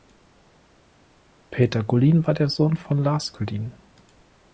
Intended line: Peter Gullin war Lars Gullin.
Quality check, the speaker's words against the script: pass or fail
fail